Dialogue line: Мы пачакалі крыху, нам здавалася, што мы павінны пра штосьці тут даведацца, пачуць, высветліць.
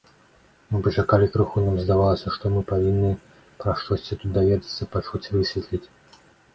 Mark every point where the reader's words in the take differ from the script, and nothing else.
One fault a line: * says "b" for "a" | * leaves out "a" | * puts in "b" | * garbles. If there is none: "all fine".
all fine